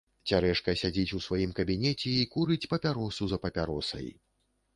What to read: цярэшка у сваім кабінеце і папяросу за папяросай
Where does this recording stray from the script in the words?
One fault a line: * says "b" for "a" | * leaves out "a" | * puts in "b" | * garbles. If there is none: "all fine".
* puts in "сядзіць"
* puts in "курыць"